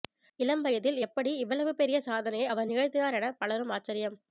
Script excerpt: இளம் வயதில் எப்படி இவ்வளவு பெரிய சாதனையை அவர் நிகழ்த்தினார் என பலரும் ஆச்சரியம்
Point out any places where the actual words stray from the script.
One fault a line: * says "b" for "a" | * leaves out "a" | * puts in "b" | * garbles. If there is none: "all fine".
all fine